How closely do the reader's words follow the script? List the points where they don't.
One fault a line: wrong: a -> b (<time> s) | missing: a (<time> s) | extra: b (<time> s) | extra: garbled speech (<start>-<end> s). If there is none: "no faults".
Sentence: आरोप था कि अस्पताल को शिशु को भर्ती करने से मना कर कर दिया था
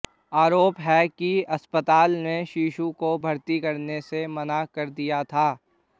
wrong: था -> है (0.8 s)
wrong: को -> ने (2.2 s)
missing: कर (4.9 s)